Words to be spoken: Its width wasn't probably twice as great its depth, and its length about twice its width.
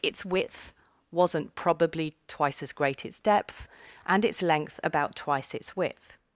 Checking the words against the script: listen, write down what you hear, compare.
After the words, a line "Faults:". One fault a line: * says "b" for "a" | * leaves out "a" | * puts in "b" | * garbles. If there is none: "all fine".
Its width wasn't probably twice as great its depth, and its length about twice its width.
Faults:
all fine